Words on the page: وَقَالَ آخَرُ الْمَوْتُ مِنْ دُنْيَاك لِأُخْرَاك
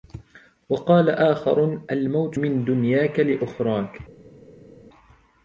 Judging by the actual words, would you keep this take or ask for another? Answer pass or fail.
pass